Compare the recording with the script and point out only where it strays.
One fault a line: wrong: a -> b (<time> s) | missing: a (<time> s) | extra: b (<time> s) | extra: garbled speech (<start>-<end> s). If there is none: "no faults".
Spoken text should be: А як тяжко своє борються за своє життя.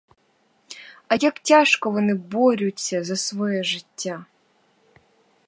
wrong: своє -> вони (1.9 s)